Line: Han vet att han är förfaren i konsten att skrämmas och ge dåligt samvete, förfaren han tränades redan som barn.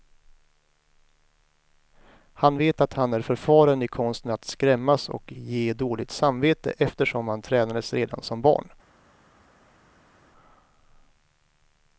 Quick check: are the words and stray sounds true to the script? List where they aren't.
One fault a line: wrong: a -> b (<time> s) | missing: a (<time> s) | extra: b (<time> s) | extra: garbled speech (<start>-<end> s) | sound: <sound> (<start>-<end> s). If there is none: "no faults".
wrong: förfaren -> eftersom (6.8 s)